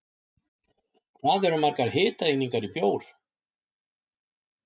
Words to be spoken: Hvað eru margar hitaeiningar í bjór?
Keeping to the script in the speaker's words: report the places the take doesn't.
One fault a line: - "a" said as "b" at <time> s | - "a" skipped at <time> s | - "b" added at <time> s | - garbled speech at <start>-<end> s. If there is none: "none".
none